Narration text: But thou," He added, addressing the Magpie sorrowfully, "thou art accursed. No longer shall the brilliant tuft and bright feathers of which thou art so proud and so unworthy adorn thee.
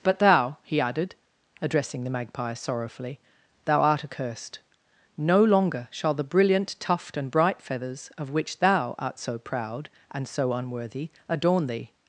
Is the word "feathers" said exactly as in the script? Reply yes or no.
yes